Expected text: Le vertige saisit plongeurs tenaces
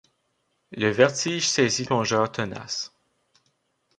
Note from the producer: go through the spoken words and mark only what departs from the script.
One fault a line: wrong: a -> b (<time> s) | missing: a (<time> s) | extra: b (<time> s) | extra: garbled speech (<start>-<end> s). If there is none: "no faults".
no faults